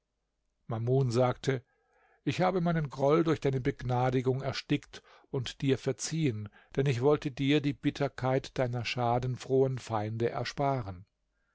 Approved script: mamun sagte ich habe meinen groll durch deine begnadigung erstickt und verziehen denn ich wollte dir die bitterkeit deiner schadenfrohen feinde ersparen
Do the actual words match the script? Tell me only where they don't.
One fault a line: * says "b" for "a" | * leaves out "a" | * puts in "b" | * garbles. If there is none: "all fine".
* puts in "dir"